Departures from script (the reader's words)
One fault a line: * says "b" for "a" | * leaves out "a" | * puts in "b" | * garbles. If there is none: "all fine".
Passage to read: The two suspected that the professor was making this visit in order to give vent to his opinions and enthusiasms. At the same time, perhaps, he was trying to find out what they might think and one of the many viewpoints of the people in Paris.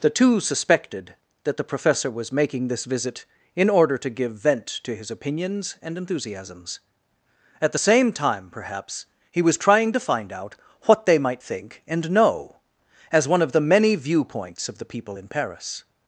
* puts in "know as"